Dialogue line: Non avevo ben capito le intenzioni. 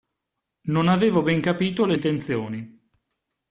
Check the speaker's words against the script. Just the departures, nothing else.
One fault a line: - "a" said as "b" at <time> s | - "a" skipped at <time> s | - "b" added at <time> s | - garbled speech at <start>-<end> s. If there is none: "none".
none